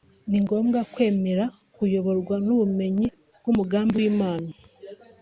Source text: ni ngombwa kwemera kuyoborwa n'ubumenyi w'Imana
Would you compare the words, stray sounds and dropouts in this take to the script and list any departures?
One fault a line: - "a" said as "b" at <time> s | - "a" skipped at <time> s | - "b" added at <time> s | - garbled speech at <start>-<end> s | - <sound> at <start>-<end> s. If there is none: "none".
- "bw'umugambi" added at 3.4 s